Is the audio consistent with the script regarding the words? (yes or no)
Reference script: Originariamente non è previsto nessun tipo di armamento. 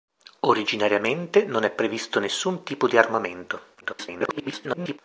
no